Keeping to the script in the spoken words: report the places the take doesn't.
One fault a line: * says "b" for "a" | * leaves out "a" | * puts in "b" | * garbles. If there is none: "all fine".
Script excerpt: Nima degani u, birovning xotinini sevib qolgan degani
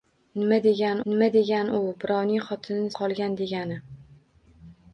* puts in "nima degani"
* leaves out "sevib"